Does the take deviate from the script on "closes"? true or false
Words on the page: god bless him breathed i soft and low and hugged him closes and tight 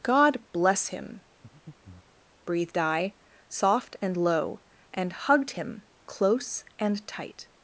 true